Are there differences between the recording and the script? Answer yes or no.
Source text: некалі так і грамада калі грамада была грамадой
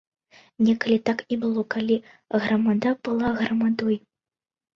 yes